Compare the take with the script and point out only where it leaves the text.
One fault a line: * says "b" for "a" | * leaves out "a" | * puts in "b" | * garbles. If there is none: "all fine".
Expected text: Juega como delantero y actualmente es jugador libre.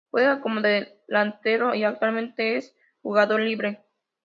all fine